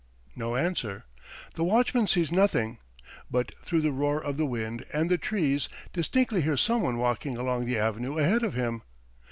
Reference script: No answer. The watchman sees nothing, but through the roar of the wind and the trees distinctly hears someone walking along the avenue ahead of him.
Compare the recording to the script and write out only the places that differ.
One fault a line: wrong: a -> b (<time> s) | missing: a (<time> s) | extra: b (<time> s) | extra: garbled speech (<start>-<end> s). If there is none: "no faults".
no faults